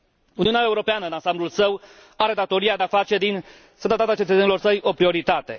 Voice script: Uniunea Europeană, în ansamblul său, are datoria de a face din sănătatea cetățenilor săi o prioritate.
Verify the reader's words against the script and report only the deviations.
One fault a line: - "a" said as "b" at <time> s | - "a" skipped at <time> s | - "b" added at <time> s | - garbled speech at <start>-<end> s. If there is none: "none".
none